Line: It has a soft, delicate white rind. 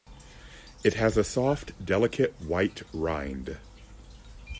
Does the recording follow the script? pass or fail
pass